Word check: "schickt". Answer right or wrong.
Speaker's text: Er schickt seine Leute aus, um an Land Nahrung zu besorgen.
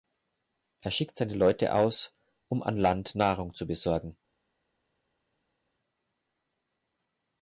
right